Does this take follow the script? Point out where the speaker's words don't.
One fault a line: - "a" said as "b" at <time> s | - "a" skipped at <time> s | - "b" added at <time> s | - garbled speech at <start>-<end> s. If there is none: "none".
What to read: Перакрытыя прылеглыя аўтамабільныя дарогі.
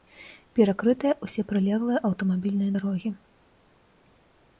- "ўсе" added at 1.2 s